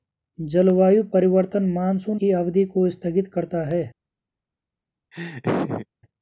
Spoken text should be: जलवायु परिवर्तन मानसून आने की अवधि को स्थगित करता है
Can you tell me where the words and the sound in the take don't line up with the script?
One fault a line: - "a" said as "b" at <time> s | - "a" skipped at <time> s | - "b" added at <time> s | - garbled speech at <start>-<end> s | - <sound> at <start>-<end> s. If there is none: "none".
- "आने" skipped at 2.2 s
- laugh at 5.1-5.9 s